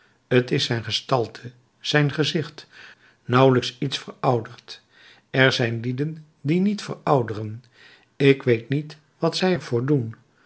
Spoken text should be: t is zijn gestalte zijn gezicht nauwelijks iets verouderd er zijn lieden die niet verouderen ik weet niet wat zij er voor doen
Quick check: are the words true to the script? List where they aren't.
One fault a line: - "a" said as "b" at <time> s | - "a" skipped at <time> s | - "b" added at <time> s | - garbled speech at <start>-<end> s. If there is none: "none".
none